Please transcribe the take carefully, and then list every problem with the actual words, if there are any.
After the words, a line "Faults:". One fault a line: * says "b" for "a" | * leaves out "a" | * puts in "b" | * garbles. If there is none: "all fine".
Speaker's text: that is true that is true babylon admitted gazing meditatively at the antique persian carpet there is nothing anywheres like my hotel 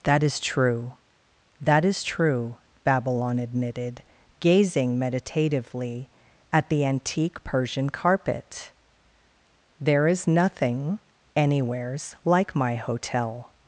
that is true that is true babylon admitted gazing meditatively at the antique persian carpet there is nothing anywheres like my hotel
Faults:
all fine